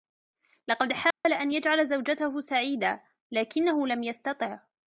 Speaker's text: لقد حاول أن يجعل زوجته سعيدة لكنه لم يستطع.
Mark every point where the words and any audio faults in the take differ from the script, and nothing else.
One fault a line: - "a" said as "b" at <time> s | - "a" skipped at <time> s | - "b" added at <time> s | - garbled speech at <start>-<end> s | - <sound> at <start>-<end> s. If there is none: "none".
- dropout at 1.1-1.2 s